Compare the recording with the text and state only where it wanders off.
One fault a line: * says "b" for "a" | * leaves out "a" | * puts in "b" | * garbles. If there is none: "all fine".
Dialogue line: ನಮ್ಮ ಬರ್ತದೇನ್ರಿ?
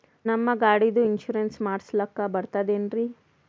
* puts in "ಗಾಡಿದು ಇನ್ಸೂರೆನ್ಸ್ ಮಾಡಸ್ಲಾಕ"